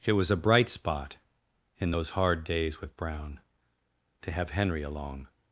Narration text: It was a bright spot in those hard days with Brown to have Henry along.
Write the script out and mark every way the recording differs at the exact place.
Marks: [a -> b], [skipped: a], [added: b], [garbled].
It was a bright spot in those hard days with Brown to have Henry along.